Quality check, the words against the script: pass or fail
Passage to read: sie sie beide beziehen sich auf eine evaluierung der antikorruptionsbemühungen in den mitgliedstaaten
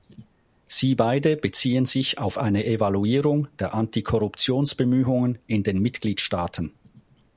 fail